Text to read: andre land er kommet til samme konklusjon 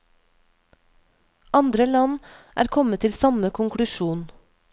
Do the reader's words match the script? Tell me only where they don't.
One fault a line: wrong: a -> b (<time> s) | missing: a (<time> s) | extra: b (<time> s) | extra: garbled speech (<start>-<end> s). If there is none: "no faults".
no faults